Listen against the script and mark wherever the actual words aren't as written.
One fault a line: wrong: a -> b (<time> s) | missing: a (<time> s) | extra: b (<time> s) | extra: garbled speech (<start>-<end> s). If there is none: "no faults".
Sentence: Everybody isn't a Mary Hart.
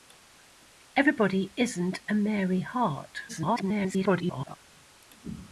extra: garbled speech (3.3-4.6 s)